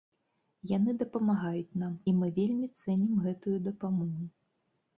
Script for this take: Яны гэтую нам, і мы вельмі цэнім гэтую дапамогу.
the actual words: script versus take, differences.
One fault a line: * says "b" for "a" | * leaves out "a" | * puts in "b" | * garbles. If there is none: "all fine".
* says "дапамагаюць" for "гэтую"